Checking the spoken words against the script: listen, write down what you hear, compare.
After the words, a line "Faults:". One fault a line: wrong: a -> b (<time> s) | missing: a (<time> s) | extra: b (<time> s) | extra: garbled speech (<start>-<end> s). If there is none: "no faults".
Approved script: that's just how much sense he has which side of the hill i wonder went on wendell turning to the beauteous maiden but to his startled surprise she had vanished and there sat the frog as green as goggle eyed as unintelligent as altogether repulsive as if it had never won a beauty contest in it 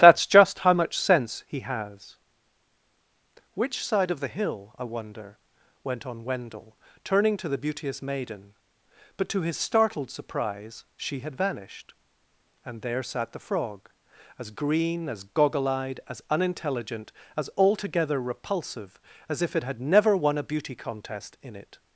that's just how much sense he has which side of the hill i wonder went on wendell turning to the beauteous maiden but to his startled surprise she had vanished and there sat the frog as green as goggle eyed as unintelligent as altogether repulsive as if it had never won a beauty contest in it
Faults:
no faults